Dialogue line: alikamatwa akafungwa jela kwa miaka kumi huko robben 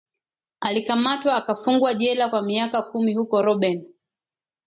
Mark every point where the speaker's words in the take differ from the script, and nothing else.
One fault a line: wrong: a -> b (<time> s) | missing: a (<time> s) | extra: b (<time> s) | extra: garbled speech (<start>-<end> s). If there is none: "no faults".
no faults